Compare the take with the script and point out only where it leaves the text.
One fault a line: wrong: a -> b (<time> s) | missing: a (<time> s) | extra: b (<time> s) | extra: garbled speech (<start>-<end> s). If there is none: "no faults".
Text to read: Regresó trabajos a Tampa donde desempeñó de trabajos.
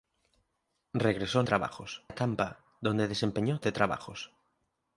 no faults